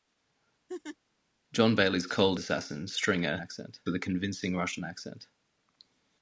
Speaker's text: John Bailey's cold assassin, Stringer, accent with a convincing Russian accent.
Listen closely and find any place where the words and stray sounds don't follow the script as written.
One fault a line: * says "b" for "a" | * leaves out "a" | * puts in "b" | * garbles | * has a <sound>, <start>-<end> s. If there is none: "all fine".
* has a laugh, 0.7-1.0 s